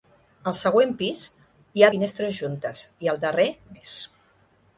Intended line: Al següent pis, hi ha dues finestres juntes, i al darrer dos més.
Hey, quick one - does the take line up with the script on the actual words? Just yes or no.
no